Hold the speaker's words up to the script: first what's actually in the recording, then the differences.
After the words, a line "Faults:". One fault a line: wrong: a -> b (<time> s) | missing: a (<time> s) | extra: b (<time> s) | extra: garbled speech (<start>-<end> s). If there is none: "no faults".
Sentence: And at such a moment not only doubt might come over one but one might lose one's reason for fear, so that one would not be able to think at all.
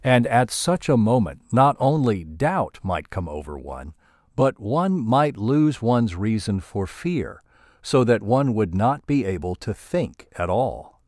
And at such a moment not only doubt might come over one but one might lose one's reason for fear, so that one would not be able to think at all.
Faults:
no faults